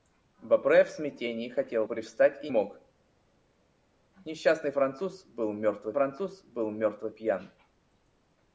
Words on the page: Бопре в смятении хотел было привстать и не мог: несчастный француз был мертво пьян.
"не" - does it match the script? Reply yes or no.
no